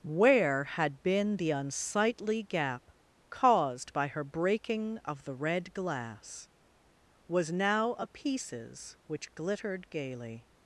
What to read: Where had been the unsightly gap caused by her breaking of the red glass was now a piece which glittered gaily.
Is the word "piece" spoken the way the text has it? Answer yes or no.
no